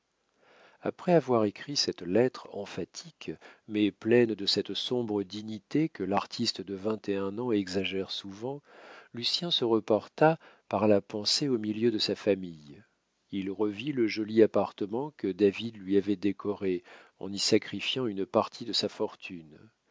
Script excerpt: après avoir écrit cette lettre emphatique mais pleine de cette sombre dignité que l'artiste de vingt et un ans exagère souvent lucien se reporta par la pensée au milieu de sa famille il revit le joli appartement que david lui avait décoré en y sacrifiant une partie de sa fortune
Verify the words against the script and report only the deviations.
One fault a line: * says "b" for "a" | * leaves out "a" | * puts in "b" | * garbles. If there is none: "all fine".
all fine